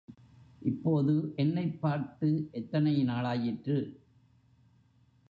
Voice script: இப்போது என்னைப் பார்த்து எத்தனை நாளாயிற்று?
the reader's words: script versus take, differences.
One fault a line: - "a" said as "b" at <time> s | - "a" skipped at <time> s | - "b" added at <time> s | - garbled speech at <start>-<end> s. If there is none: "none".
none